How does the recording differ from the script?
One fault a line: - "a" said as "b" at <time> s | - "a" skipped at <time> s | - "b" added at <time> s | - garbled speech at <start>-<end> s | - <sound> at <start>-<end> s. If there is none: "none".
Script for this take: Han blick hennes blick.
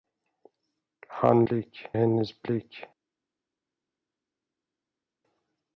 none